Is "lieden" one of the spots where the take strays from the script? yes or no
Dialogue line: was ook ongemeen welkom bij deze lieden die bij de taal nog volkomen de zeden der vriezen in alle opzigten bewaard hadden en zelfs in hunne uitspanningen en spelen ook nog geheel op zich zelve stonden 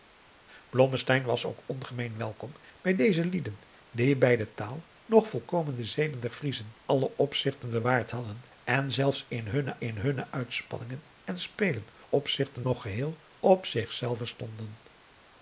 no